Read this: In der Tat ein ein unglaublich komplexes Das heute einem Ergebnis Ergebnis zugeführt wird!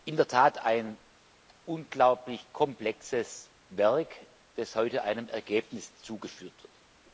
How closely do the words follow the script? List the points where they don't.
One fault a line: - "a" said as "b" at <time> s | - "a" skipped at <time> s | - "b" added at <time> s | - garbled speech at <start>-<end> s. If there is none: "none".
- "ein" skipped at 1.0 s
- "Werk" added at 3.7 s
- "Ergebnis" skipped at 6.0 s